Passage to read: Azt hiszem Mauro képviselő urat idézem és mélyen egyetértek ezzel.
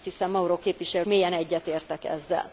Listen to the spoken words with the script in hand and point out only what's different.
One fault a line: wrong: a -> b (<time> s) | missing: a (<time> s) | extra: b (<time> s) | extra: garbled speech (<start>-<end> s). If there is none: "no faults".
missing: urat idézem és (1.1 s)